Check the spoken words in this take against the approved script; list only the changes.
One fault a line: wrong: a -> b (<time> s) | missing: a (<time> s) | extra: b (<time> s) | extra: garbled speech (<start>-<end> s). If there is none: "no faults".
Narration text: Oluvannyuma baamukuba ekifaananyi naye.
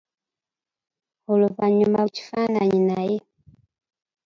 missing: baamukuba (2.0 s)